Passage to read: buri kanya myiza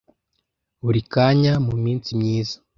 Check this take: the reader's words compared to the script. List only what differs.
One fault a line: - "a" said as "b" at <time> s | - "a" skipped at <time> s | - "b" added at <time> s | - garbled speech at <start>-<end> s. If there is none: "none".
- "muminsi" added at 1.6 s